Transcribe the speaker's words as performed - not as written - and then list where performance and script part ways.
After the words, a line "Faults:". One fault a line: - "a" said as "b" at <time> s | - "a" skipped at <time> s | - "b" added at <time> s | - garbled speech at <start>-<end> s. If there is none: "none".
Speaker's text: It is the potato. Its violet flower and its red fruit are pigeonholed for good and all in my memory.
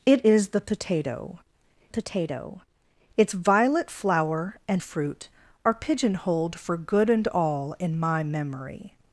It is the potato potato. Its violet flower and fruit are pigeonholed for good and all in my memory.
Faults:
- "potato" added at 1.9 s
- "its red" skipped at 4.8 s